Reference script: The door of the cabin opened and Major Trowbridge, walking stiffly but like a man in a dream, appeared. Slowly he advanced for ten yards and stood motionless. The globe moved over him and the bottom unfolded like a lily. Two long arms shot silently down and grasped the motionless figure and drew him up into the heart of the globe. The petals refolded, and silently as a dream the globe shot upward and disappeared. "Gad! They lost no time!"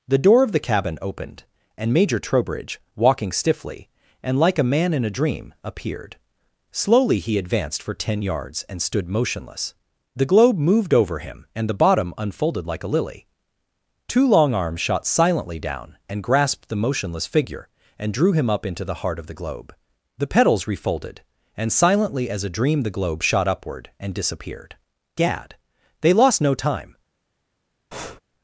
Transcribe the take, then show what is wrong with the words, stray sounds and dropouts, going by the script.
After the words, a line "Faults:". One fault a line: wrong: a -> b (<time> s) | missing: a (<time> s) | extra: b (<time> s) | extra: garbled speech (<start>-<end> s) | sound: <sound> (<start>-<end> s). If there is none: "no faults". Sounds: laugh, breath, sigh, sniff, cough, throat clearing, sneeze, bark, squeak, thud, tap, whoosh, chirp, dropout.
The door of the cabin opened and Major Trowbridge, walking stiffly and like a man in a dream, appeared. Slowly he advanced for ten yards and stood motionless. The globe moved over him and the bottom unfolded like a lily. Two long arms shot silently down and grasped the motionless figure and drew him up into the heart of the globe. The petals refolded, and silently as a dream the globe shot upward and disappeared. "Gad! They lost no time!"
Faults:
wrong: but -> and (4.2 s)
sound: breath (27.9-28.2 s)